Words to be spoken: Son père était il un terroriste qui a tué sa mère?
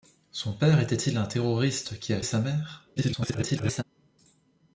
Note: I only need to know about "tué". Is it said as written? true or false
false